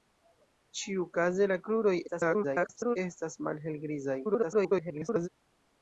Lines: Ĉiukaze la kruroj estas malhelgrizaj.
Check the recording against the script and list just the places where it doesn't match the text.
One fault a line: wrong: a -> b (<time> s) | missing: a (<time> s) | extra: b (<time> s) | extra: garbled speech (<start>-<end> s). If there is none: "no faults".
extra: garbled speech (2.1-3.0 s)
extra: garbled speech (4.2-5.3 s)